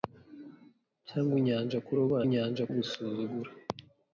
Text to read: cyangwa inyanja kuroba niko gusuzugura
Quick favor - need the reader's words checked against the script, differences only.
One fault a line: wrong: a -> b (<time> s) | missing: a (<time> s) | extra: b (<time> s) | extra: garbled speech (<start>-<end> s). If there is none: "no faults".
wrong: niko -> inyanja (2.3 s)